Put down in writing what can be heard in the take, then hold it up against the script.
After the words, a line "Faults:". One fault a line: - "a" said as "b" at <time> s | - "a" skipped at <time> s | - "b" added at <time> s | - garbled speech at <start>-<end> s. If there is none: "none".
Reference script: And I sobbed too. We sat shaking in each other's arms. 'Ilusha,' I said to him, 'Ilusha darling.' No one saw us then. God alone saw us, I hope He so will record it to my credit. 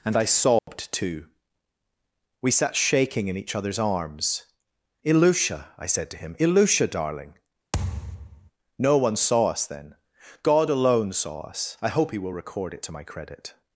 And I sobbed too. We sat shaking in each other's arms. 'Ilusha,' I said to him, 'Ilusha darling.' No one saw us then. God alone saw us, I hope He will record it to my credit.
Faults:
- "so" skipped at 12.2 s